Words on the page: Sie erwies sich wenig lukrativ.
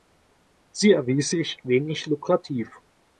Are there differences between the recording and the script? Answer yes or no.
no